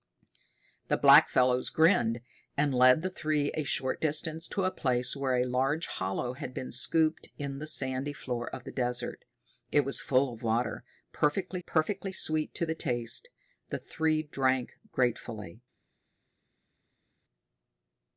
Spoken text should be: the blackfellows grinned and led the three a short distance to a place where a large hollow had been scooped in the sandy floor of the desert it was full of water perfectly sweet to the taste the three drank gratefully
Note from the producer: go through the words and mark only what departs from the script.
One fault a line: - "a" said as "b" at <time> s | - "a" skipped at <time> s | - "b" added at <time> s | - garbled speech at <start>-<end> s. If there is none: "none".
- "perfectly" added at 11.6 s